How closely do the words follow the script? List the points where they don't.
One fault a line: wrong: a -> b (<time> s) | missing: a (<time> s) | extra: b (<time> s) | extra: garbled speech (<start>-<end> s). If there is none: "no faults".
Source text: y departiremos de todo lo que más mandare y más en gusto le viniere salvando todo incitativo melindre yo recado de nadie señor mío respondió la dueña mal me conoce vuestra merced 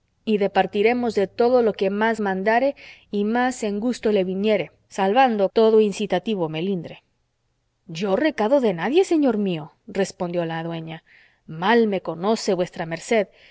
no faults